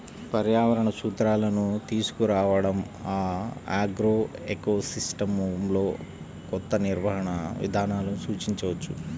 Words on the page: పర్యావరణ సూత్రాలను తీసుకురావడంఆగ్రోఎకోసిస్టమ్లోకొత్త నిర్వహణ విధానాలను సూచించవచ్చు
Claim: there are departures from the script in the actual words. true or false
false